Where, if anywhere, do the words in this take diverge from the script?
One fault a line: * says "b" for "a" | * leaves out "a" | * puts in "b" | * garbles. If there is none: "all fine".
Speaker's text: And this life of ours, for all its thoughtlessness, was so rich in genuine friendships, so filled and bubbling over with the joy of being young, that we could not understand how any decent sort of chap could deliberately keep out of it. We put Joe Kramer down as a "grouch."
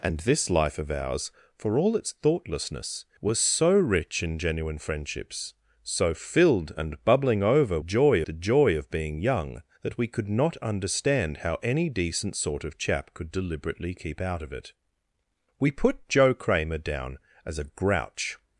* says "joy" for "with"